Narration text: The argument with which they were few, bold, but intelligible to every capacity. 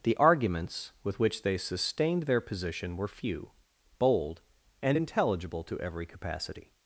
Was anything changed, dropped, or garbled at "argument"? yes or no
yes